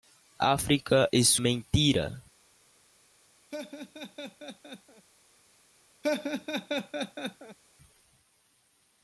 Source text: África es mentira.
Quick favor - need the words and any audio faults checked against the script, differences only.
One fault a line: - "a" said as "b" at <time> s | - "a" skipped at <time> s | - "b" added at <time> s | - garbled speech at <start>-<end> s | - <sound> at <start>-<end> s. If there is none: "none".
- laugh at 3.5-5.1 s
- laugh at 6.0-7.6 s